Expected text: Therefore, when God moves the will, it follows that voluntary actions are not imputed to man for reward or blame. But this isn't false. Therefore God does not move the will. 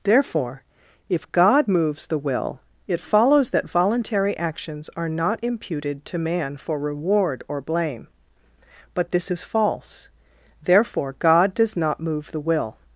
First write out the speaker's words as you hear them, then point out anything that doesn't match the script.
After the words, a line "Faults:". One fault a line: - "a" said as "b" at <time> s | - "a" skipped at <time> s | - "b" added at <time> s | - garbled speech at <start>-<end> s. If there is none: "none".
Therefore, if God moves the will, it follows that voluntary actions are not imputed to man for reward or blame. But this is false. Therefore God does not move the will.
Faults:
- "when" said as "if" at 1.1 s
- "isn't" said as "is" at 9.3 s